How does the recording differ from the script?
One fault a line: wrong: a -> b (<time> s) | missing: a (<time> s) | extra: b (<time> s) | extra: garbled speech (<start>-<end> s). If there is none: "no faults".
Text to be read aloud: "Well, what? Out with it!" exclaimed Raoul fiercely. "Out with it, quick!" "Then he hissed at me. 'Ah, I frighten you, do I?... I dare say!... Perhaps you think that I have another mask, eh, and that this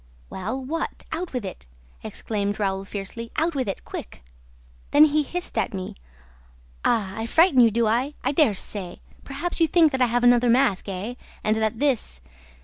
no faults